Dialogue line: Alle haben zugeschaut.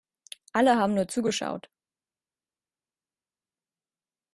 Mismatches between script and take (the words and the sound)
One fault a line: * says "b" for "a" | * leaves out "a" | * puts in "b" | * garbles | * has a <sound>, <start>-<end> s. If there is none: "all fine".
* puts in "nur"